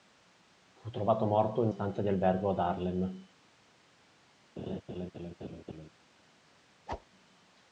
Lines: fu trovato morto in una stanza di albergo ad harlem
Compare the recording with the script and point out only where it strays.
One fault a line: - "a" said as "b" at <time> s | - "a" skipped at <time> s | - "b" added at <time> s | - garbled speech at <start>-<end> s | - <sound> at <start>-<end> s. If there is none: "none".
- "una" skipped at 1.7 s
- laugh at 4.6-5.9 s
- whoosh at 6.9-7.1 s